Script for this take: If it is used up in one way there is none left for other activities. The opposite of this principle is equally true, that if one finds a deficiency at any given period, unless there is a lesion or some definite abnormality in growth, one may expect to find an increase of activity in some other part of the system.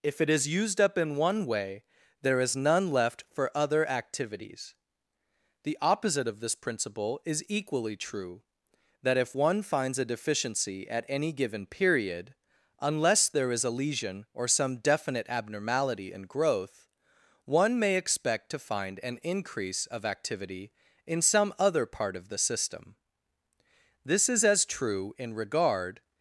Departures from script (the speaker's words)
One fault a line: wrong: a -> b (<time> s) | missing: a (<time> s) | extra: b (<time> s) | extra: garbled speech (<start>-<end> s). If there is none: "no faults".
extra: This is as true in regard (24.0 s)